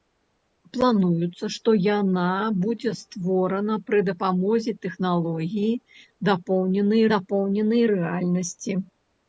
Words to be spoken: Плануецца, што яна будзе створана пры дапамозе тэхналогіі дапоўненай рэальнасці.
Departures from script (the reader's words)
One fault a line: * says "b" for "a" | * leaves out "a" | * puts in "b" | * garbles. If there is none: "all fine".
* puts in "дапоўненай"